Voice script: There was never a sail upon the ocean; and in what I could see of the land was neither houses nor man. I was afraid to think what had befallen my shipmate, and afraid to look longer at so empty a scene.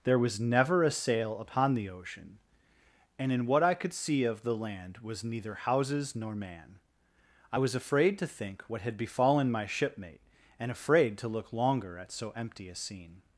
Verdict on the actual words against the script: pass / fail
pass